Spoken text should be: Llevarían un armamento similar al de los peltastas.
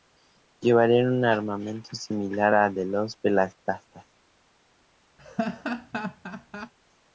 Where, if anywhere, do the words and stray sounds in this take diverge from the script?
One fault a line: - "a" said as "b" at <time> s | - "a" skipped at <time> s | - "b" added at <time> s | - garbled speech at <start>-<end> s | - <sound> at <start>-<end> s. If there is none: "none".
- laugh at 5.2-6.7 s